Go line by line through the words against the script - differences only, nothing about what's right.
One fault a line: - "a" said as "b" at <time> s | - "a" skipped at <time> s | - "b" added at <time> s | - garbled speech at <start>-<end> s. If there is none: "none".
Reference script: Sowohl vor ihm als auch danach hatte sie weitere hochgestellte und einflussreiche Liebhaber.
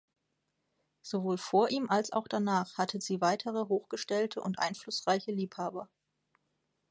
none